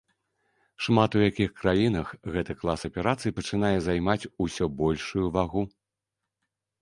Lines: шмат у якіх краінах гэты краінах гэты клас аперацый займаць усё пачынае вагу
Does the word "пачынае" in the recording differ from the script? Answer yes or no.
yes